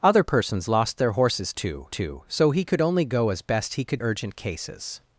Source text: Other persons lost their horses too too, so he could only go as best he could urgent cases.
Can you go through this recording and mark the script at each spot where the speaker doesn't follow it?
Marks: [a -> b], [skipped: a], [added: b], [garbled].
Other persons lost their horses too too, so he could only go as best he could urgent cases.